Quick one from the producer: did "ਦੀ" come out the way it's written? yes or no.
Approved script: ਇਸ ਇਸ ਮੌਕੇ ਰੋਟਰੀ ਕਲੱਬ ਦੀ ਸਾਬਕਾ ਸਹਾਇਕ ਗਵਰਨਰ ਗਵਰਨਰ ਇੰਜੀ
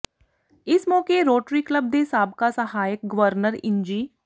no